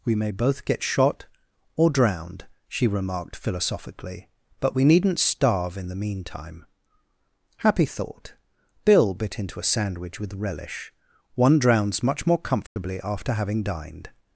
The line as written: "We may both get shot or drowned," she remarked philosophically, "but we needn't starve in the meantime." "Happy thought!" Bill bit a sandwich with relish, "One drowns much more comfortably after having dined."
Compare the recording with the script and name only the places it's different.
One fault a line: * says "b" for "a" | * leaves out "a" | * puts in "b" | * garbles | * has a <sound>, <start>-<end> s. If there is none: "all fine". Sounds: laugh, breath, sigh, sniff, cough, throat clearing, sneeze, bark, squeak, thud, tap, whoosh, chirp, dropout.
* puts in "into"
* has a dropout, 12.7-12.8 s